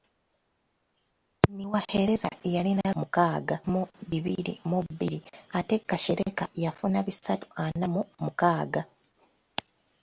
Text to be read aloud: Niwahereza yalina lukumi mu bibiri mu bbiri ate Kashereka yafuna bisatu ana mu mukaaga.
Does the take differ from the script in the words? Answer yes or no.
yes